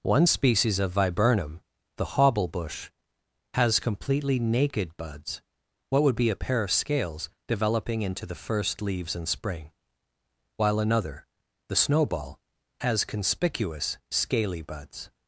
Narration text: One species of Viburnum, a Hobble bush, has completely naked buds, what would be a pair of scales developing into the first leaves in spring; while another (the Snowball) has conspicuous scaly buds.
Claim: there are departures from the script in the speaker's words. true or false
true